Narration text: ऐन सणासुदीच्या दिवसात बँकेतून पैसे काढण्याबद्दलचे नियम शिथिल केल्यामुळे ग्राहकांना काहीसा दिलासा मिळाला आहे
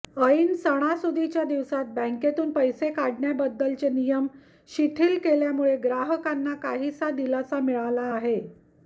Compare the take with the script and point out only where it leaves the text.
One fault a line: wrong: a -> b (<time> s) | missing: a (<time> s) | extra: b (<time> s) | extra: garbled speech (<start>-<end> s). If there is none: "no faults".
no faults